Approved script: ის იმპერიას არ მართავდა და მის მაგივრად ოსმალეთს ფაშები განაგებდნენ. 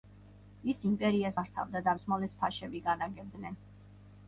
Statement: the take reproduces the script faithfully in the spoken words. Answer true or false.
false